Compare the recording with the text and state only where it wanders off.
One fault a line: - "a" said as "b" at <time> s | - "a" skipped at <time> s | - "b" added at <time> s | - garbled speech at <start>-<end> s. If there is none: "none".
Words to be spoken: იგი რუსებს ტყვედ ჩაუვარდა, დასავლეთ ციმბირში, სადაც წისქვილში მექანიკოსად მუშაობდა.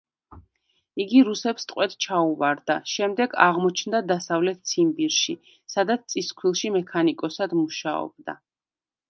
- "შემდეგ აღმოჩნდა" added at 2.9 s